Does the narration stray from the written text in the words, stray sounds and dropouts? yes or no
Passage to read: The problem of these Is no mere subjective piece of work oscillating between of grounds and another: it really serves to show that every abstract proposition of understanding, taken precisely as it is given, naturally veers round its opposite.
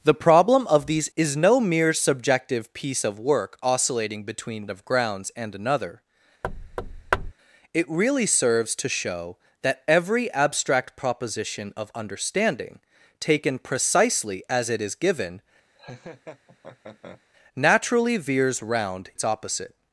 yes